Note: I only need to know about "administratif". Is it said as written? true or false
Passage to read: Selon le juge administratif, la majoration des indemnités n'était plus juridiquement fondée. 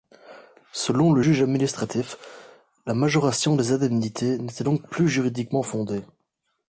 true